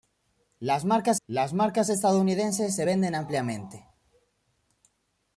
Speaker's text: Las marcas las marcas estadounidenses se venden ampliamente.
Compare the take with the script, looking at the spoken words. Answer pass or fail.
pass